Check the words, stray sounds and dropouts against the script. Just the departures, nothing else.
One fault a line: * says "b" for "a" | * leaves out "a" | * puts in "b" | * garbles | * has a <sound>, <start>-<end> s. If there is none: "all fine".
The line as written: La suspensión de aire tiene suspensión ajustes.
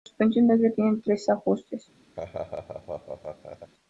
* says "tres" for "suspensión"
* has a laugh, 2.2-3.7 s